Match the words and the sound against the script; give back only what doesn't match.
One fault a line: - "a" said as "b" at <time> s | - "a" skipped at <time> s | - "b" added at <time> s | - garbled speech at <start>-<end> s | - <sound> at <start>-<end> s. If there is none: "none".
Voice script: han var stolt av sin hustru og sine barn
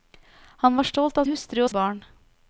- "sin" skipped at 1.2 s
- "sine" skipped at 1.7 s